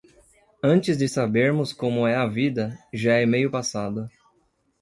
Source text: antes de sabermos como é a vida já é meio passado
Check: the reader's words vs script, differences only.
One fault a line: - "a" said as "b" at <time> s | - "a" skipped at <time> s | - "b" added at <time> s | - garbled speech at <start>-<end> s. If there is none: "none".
none